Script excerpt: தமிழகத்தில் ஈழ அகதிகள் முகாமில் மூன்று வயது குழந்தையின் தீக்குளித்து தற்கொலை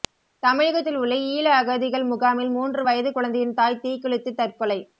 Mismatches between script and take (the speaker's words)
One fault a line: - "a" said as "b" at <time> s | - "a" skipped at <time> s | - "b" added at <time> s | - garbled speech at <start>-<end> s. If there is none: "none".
- "உள்ள" added at 1.0 s
- "தாய்" added at 3.6 s